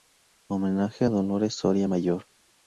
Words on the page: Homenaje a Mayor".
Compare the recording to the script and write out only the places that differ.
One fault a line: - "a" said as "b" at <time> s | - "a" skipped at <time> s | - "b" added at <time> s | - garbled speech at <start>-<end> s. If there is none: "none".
- "Dolores Soria" added at 1.1 s